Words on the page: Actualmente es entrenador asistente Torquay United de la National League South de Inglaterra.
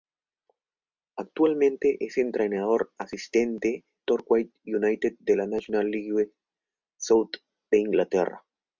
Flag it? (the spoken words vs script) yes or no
no